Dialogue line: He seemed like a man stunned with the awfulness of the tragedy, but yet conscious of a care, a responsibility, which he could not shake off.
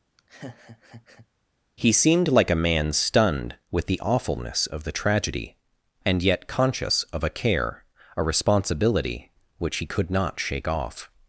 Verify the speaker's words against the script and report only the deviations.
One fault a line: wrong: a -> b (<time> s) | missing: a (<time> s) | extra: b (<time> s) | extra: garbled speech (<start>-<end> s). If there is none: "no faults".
wrong: but -> and (6.0 s)